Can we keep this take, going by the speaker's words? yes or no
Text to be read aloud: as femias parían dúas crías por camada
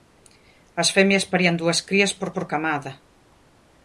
no